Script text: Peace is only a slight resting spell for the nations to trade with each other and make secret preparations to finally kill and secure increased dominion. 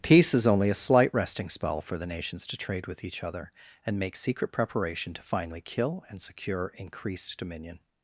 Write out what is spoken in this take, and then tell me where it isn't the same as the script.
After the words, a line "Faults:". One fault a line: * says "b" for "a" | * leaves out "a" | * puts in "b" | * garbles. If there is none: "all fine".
Peace is only a slight resting spell for the nations to trade with each other and make secret preparation to finally kill and secure increased dominion.
Faults:
* says "preparation" for "preparations"